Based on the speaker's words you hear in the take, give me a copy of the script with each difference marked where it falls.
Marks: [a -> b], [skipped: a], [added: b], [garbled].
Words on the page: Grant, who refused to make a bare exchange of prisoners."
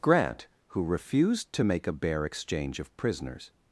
Grant, who refused to make a bare exchange of prisoners."